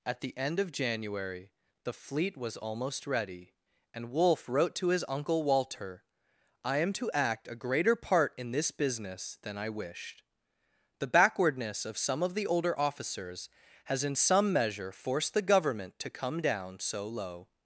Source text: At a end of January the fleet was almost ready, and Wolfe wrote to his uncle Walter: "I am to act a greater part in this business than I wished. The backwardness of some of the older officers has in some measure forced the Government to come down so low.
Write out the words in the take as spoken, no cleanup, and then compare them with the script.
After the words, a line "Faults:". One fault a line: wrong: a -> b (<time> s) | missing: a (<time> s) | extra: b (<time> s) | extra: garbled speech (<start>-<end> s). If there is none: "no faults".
At the end of January the fleet was almost ready, and Wolfe wrote to his uncle Walter: "I am to act a greater part in this business than I wished. The backwardness of some of the older officers has in some measure forced the Government to come down so low.
Faults:
wrong: a -> the (0.2 s)